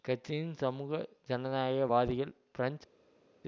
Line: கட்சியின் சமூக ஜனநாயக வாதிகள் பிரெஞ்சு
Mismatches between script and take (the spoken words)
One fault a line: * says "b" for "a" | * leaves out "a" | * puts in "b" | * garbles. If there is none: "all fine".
all fine